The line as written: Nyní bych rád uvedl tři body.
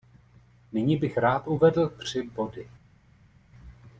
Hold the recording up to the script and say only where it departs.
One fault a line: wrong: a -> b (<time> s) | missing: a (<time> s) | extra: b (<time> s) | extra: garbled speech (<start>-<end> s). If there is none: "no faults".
no faults